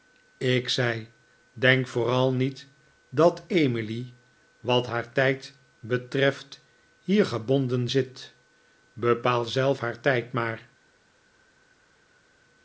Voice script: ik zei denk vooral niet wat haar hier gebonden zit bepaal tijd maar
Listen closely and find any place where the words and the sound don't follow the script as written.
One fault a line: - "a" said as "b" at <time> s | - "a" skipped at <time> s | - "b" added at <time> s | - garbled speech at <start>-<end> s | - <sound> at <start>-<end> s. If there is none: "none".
- "dat emily" added at 3.1 s
- "tijd betreft" added at 5.1 s
- "zelf haar" added at 9.4 s